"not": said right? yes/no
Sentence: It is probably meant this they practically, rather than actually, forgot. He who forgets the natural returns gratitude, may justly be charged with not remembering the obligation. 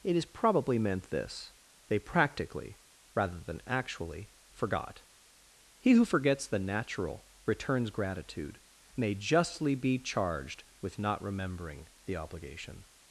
yes